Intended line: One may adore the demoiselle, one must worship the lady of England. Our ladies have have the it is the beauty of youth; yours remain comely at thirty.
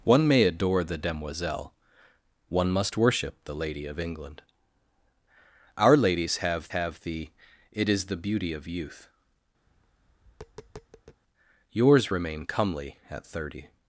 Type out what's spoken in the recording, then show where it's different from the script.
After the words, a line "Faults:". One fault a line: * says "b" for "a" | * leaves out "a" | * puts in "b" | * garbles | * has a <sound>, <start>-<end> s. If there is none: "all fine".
One may adore the demoiselle, one must worship the lady of England. Our ladies have have the it is the beauty of youth; yours remain comely at thirty.
Faults:
* has a tap, 9.7-11.2 s